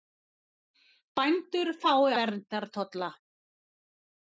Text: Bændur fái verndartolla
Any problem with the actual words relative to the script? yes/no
no